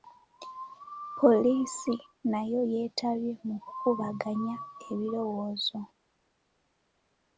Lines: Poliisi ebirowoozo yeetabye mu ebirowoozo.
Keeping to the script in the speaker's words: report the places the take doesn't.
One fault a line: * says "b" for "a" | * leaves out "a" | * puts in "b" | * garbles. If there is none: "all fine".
* says "nayo" for "ebirowoozo"
* puts in "kukubaganya"